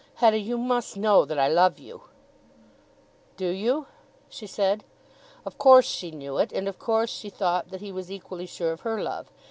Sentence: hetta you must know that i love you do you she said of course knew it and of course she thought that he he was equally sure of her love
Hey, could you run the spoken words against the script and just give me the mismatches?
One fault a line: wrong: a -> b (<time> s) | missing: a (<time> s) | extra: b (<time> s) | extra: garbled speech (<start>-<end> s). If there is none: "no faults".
extra: she (5.9 s)
missing: he (7.9 s)